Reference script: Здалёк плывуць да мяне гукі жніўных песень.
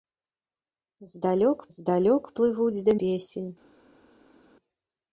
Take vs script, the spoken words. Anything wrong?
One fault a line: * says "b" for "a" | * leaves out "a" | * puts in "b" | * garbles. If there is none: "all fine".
* puts in "здалёк"
* leaves out "мяне гукі жніўных"